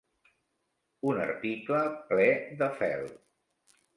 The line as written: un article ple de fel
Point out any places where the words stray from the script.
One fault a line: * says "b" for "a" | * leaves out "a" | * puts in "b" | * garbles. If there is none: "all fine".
all fine